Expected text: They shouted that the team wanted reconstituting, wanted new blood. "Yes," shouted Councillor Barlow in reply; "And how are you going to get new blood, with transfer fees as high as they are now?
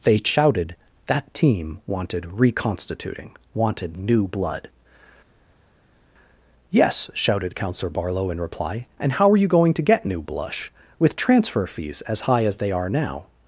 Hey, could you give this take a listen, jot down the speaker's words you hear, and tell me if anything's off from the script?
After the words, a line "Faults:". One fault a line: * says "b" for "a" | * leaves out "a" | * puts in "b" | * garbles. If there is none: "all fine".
They shouted that team wanted reconstituting, wanted new blood. "Yes," shouted Councillor Barlow in reply; "And how are you going to get new blush, with transfer fees as high as they are now?
Faults:
* leaves out "the"
* says "blush" for "blood"